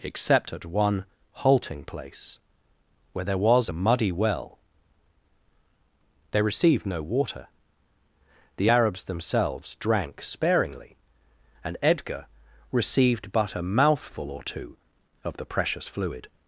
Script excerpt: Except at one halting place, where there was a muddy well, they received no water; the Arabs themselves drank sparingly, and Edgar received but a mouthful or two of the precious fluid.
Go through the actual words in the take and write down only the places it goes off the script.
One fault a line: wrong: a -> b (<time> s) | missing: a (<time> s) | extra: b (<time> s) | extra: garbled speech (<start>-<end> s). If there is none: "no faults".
no faults